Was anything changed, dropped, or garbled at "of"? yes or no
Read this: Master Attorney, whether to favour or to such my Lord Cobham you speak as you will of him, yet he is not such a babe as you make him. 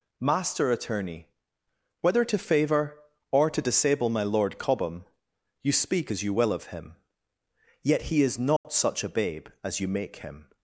no